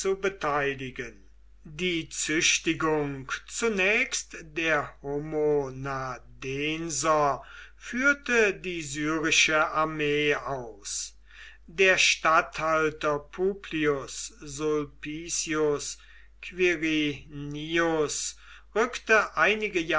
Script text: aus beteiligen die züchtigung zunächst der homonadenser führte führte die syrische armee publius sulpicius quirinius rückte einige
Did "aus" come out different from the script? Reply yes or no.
yes